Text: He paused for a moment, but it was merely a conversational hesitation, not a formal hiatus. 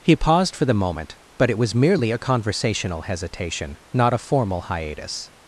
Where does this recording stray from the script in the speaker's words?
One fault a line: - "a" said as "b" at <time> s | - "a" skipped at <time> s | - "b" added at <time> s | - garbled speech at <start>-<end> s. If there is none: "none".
- "a" said as "the" at 0.7 s